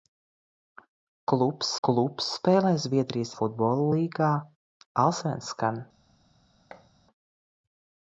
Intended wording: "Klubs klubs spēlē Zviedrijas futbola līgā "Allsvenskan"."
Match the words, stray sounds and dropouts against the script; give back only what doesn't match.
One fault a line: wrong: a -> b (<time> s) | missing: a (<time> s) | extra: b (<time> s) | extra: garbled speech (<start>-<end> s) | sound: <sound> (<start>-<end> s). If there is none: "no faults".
sound: thud (6.7-6.9 s)